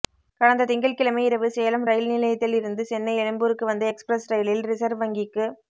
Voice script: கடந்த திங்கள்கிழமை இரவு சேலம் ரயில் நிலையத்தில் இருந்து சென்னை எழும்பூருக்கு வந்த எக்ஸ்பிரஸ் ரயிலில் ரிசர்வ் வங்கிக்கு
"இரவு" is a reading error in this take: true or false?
false